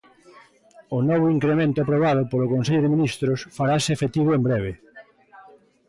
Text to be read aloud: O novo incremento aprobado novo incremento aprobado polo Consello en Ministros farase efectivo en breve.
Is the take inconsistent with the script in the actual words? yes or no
yes